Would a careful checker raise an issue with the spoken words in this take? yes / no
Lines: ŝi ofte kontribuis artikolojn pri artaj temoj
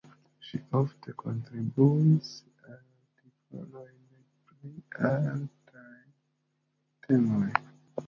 no